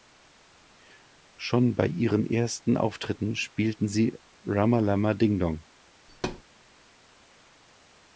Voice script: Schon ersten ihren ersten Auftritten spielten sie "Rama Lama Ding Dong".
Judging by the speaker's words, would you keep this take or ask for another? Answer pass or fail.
fail